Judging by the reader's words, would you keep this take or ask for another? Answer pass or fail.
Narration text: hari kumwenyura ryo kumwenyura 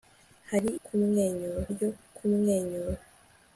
pass